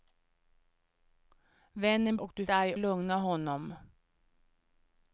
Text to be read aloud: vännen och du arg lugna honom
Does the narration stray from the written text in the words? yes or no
no